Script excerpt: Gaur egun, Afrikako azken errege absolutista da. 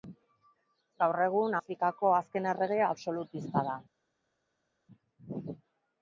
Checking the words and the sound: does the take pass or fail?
pass